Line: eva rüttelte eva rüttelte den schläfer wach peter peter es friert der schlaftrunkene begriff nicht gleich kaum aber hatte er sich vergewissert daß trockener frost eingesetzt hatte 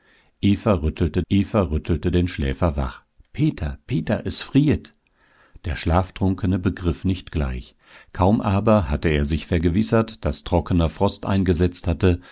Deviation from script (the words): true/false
false